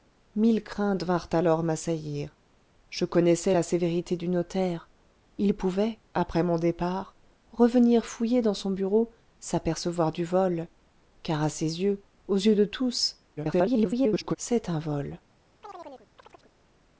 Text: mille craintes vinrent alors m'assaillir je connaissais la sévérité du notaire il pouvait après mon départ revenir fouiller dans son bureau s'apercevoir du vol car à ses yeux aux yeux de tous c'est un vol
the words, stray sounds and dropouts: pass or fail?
fail